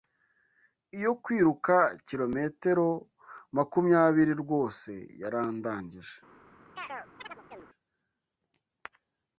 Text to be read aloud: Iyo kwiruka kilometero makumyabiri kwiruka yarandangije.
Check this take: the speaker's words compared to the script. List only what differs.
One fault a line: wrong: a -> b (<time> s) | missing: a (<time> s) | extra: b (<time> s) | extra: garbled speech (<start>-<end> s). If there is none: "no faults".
wrong: kwiruka -> rwose (4.4 s)